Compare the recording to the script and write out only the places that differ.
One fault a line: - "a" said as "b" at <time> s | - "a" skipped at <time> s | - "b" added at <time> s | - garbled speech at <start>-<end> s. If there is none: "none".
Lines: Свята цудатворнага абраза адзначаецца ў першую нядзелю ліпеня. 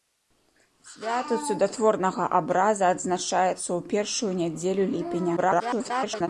- garbled speech at 5.4-6.3 s